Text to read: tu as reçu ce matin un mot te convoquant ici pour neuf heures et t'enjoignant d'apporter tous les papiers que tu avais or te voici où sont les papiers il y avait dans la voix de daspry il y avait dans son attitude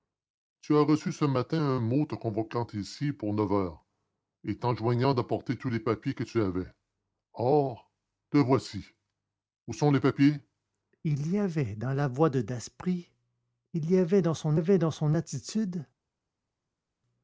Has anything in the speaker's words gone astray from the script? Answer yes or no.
yes